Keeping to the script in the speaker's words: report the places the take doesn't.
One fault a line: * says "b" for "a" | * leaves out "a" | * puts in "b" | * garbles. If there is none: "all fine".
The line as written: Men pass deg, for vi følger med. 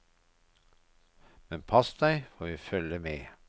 all fine